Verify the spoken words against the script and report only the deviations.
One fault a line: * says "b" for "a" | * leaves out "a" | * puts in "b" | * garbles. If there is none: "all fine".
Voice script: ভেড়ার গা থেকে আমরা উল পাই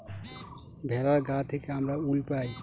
all fine